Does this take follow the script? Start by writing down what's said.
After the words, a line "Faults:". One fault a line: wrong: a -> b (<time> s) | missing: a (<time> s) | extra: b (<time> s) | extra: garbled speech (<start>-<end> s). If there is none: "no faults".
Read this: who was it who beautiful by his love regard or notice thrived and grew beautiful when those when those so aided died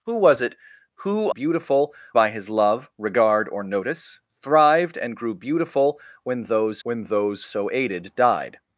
who was it who beautiful by his love regard or notice thrived and grew beautiful when those when those so aided died
Faults:
no faults